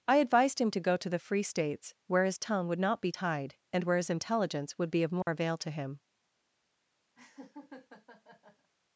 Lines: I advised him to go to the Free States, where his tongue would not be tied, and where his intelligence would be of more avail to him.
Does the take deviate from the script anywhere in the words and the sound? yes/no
yes